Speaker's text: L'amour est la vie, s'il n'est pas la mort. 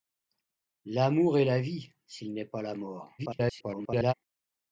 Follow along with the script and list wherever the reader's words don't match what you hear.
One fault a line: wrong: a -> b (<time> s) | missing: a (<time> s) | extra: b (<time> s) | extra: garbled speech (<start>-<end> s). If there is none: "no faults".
extra: garbled speech (3.2-4.1 s)